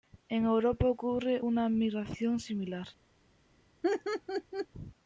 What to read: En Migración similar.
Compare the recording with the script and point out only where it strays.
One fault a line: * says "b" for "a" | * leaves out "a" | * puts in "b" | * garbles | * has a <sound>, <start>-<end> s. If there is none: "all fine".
* puts in "Europa ocurre una"
* has a laugh, 3.8-4.7 s